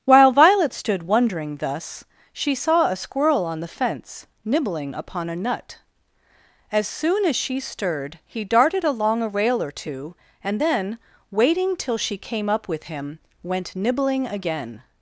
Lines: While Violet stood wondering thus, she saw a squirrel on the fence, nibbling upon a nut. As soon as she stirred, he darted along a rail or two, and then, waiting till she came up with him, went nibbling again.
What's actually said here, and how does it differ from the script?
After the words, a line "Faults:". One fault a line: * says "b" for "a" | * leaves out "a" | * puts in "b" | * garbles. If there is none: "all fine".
While Violet stood wondering thus, she saw a squirrel on the fence, nibbling upon a nut. As soon as she stirred, he darted along a rail or two, and then, waiting till she came up with him, went nibbling again.
Faults:
all fine